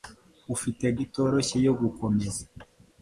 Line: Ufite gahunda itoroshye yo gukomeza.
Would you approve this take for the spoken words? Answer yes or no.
no